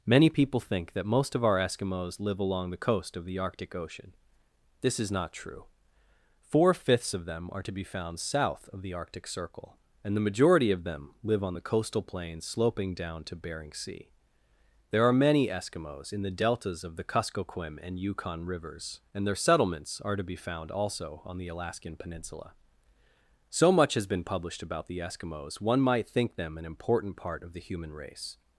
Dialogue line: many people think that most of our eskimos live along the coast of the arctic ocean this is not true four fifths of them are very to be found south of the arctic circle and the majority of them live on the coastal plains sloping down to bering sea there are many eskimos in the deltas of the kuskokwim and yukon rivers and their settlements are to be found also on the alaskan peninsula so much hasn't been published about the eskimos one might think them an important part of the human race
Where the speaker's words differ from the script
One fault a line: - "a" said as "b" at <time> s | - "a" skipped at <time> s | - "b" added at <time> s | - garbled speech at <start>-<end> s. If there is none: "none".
- "very" skipped at 7.6 s
- "hasn't" said as "has" at 24.0 s